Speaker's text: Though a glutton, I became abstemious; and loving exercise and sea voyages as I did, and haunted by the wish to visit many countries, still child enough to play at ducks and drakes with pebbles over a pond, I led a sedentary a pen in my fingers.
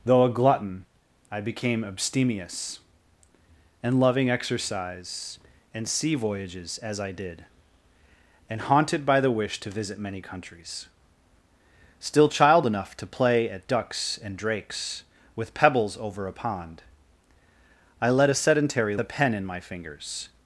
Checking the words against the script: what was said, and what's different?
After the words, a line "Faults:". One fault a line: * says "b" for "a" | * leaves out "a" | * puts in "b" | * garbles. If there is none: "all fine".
Though a glutton, I became abstemious; and loving exercise and sea voyages as I did, and haunted by the wish to visit many countries, still child enough to play at ducks and drakes with pebbles over a pond, I led a sedentary a pen in my fingers.
Faults:
all fine